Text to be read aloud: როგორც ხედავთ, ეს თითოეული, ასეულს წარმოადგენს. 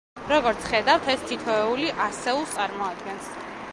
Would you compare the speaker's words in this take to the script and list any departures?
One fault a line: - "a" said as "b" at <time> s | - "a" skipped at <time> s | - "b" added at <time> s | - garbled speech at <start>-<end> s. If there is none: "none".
none